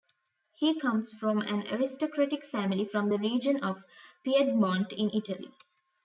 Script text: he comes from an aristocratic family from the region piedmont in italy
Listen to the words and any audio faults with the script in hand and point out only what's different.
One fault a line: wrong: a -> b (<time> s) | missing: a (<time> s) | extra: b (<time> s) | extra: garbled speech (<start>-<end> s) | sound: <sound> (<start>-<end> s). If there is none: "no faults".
extra: of (3.6 s)